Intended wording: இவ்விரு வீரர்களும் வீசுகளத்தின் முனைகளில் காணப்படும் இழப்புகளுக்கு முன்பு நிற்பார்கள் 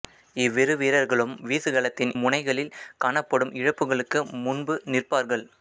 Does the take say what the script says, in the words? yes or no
yes